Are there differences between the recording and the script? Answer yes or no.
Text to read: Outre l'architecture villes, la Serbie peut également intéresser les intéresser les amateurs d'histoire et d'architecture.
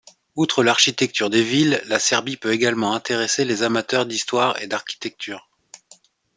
yes